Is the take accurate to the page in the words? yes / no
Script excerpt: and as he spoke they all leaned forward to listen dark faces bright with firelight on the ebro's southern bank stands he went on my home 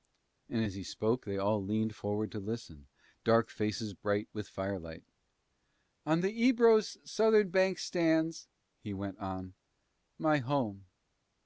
yes